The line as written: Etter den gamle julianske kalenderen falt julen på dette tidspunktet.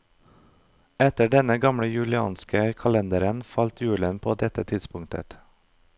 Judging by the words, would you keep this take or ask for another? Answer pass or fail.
pass